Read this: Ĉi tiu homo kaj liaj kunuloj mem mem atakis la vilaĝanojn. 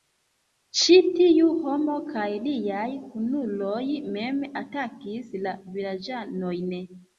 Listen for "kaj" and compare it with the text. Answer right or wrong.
right